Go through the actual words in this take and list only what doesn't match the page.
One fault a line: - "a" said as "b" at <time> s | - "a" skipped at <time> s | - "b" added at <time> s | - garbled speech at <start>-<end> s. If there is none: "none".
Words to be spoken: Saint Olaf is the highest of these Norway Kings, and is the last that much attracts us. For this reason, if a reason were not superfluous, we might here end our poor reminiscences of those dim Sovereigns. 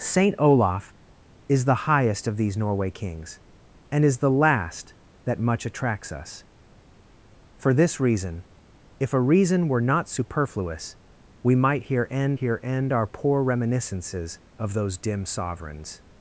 - "here end" added at 12.3 s